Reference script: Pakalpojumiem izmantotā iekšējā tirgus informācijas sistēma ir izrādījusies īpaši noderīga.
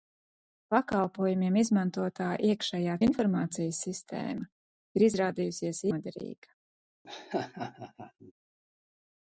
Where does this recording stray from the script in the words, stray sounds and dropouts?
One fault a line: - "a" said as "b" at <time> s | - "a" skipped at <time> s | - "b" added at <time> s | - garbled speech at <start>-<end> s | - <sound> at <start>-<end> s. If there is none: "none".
- "tirgus" skipped at 3.0 s
- "īpaši" skipped at 5.8 s
- laugh at 7.0-8.3 s